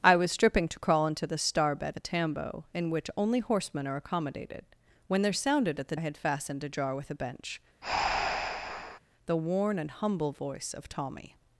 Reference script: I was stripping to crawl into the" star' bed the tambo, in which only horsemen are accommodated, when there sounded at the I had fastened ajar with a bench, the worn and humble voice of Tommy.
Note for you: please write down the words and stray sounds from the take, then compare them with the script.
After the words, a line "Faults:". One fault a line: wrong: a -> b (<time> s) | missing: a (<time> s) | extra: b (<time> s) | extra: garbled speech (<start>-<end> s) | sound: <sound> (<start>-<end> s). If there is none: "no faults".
I was stripping to crawl into the" star' bed the tambo, in which only horsemen are accommodated, when there sounded at the I had fastened ajar with a bench, the worn and humble voice of Tommy.
Faults:
sound: breath (7.8-9.0 s)